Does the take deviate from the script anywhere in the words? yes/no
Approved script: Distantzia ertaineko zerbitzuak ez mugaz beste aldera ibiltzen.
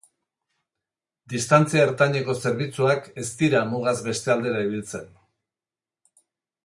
yes